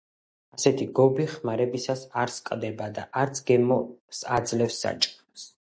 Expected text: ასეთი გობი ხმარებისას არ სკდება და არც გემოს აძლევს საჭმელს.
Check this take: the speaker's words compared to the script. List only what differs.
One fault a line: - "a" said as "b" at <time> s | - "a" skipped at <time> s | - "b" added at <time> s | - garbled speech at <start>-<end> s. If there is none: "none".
none